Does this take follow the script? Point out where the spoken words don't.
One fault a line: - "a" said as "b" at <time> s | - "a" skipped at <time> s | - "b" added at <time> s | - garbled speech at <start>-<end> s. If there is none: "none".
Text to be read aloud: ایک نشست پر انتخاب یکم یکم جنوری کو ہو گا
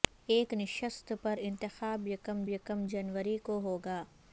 none